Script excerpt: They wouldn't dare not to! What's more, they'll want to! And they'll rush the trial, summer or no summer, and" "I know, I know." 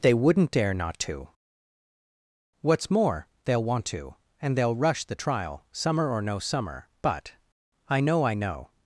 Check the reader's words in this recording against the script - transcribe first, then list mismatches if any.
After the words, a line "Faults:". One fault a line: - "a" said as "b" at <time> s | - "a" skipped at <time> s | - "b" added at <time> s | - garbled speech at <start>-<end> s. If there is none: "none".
They wouldn't dare not to! What's more, they'll want to! And they'll rush the trial, summer or no summer, but" "I know, I know."
Faults:
- "and" said as "but" at 7.0 s